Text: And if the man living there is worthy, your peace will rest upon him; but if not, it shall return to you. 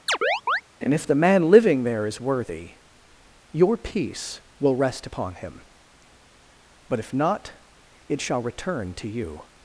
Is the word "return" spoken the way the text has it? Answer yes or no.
yes